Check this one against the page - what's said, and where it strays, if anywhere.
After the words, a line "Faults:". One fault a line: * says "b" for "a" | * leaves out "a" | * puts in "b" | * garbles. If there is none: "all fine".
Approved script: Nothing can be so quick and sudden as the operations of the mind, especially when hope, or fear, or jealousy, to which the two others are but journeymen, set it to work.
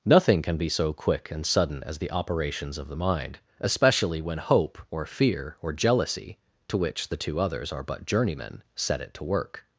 Nothing can be so quick and sudden as the operations of the mind, especially when hope, or fear, or jealousy, to which the two others are but journeymen, set it to work.
Faults:
all fine